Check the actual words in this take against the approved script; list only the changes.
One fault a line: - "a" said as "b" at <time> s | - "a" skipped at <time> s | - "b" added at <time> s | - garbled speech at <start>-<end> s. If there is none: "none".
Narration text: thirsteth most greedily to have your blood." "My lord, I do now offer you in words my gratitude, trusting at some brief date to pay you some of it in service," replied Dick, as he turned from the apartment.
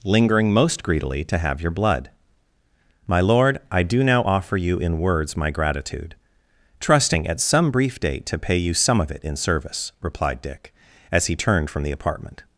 - "thirsteth" said as "lingering" at 0.0 s